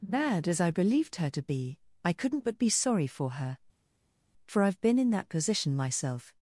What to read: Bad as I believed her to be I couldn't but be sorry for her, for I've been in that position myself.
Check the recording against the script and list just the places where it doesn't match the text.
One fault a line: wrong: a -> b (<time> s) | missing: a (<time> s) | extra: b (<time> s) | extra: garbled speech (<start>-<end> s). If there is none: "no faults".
no faults